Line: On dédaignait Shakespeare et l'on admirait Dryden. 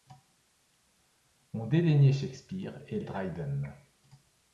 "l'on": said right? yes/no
no